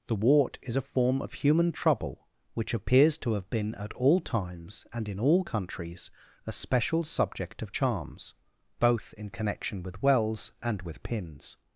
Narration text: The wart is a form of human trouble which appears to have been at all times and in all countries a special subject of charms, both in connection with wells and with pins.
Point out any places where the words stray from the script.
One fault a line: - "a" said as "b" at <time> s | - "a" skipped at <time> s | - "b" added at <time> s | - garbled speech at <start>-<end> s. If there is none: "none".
none